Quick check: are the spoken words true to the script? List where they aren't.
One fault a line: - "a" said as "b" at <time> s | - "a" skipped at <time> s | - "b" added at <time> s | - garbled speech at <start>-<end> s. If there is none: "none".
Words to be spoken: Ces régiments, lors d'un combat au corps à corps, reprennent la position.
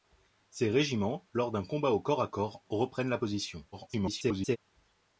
- garbled speech at 3.7-4.6 s